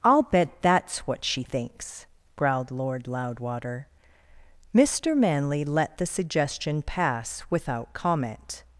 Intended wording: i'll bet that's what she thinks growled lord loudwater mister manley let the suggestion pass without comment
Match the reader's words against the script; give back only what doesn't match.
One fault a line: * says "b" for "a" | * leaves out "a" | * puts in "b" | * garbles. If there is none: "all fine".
all fine